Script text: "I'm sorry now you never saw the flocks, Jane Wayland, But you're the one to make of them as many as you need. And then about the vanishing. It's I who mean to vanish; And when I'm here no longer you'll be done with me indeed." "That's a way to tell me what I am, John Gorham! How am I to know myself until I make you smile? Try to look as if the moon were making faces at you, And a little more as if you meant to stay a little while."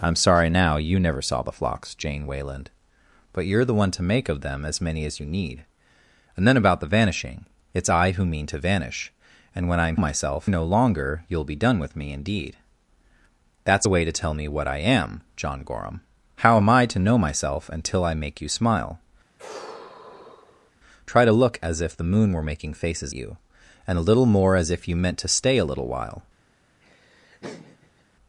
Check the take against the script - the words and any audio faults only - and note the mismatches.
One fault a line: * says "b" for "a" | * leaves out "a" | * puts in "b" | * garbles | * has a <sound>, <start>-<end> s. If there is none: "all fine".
* says "myself" for "here"
* has a sigh, 19.4-20.7 s
* leaves out "at"
* has a laugh, 26.8-28.0 s